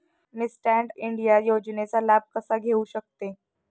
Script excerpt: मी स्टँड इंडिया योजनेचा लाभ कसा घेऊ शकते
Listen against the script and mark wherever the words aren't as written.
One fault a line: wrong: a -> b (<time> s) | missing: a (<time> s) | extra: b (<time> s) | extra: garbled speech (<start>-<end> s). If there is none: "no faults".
no faults